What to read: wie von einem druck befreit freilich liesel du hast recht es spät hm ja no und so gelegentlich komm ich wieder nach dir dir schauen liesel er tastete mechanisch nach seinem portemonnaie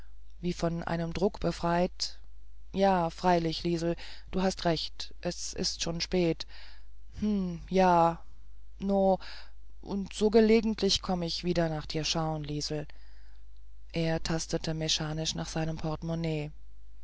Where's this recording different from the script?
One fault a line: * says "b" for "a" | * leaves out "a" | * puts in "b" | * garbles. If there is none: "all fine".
* puts in "ja"
* puts in "ist schon"
* leaves out "dir"